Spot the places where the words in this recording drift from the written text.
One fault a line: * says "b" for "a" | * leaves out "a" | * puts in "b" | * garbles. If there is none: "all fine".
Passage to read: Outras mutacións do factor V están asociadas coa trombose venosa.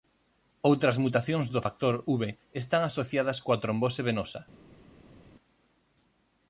all fine